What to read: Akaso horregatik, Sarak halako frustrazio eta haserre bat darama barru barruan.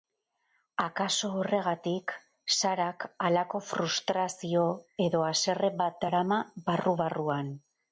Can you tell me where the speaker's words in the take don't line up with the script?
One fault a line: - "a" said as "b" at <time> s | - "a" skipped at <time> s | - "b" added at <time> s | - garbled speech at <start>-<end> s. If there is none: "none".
- "eta" said as "edo" at 5.1 s